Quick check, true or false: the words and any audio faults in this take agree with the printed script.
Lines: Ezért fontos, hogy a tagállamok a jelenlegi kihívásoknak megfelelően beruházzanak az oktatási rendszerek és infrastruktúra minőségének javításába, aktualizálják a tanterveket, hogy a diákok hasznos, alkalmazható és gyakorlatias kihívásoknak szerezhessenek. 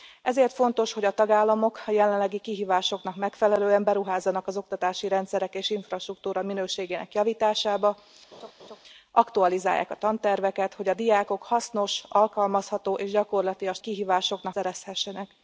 false